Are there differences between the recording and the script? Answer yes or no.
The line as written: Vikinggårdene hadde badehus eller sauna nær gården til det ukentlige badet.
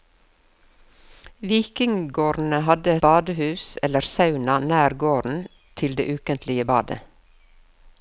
no